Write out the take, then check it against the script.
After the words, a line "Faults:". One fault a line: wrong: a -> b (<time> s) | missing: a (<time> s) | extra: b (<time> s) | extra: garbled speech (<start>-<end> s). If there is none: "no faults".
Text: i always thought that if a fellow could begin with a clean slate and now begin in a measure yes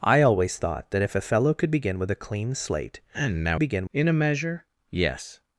i always thought that if a fellow could begin with a clean slate and now begin in a measure yes
Faults:
no faults